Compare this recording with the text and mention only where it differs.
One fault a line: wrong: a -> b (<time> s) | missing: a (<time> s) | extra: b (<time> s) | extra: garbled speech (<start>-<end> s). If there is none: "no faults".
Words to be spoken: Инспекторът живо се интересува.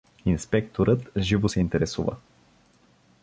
no faults